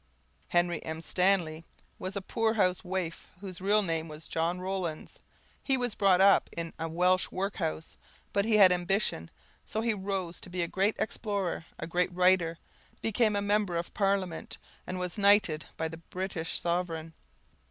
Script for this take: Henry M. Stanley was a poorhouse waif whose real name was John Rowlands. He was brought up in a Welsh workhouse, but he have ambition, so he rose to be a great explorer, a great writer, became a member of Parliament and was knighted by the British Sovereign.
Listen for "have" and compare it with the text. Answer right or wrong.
wrong